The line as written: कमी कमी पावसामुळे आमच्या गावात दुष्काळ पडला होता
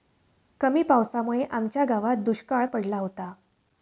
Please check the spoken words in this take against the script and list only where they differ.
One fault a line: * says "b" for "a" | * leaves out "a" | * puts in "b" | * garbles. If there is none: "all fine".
* leaves out "कमी"